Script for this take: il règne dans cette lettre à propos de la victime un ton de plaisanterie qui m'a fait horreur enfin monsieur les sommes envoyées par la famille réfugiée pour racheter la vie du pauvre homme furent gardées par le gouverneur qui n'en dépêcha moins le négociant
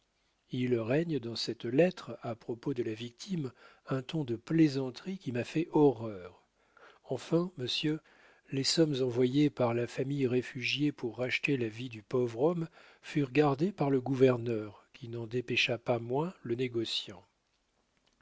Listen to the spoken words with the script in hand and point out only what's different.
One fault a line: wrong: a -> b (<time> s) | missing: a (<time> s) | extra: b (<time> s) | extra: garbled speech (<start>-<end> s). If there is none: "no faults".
extra: pas (15.8 s)